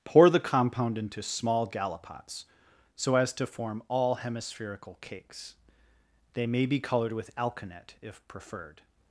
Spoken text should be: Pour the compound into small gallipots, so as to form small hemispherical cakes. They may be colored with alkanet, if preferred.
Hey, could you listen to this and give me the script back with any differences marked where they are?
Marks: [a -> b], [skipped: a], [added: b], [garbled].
Pour the compound into small gallipots, so as to form [small -> all] hemispherical cakes. They may be colored with alkanet, if preferred.